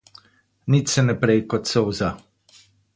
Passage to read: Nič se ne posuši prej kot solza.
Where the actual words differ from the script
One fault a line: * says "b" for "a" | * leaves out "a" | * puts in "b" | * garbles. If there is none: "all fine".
* leaves out "posuši"